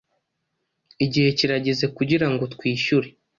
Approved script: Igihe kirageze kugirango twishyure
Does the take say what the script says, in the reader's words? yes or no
yes